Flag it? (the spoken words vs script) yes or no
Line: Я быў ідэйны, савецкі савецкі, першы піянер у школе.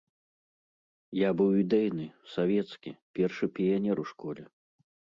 yes